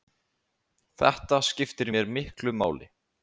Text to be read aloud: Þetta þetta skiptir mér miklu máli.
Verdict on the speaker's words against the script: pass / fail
fail